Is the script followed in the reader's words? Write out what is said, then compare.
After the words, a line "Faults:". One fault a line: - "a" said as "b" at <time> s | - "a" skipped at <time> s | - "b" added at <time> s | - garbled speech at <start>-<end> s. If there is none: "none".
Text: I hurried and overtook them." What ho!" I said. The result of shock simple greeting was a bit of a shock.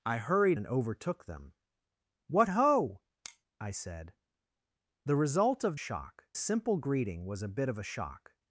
I hurried and overtook them." What ho!" I said. The result of shock simple greeting was a bit of a shock.
Faults:
none